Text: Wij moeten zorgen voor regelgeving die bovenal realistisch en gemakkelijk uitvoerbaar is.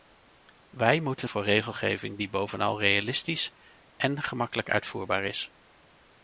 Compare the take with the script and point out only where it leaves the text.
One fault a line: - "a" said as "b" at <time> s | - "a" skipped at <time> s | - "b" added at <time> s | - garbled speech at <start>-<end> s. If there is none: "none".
- "zorgen" skipped at 1.3 s